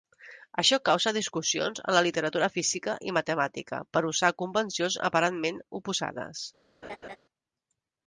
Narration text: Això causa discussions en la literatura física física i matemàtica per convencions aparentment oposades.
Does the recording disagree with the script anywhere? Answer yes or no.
yes